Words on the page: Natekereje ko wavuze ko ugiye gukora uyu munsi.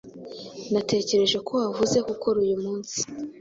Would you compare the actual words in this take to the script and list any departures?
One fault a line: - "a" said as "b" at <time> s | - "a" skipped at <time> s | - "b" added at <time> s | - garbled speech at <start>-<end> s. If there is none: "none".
- "ko ugiye" skipped at 2.0 s